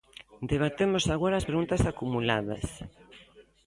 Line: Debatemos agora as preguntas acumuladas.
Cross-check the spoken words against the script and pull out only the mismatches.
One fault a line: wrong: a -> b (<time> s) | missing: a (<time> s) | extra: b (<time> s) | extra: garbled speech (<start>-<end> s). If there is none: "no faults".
no faults